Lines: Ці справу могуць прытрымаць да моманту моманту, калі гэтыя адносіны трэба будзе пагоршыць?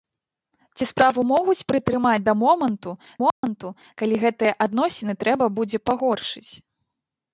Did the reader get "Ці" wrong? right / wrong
right